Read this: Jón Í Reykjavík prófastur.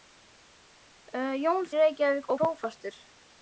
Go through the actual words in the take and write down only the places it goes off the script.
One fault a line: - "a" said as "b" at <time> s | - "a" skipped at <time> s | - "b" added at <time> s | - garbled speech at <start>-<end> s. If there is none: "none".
none